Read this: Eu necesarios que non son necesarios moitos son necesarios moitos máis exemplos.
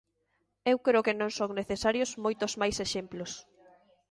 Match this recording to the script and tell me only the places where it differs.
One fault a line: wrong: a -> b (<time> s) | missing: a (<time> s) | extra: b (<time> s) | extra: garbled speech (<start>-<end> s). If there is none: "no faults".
wrong: necesarios -> creo (0.8 s)
missing: son necesarios moitos (2.5 s)